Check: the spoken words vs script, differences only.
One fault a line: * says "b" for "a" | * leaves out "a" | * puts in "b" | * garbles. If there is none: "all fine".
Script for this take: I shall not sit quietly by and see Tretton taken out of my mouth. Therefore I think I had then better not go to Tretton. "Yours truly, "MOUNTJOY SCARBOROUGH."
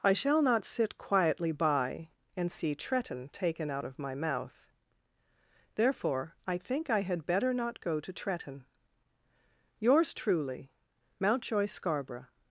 * leaves out "then"